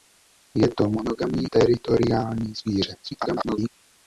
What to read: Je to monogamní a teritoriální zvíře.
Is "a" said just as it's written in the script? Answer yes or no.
no